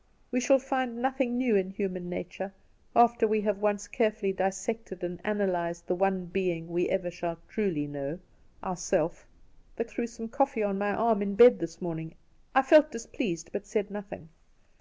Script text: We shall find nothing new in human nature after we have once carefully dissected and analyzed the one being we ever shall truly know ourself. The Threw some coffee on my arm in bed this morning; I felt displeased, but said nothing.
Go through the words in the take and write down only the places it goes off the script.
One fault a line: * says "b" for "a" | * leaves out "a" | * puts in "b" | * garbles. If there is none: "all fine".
all fine